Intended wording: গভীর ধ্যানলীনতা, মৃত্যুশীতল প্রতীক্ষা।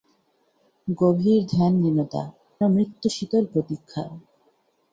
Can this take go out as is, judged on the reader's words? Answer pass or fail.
pass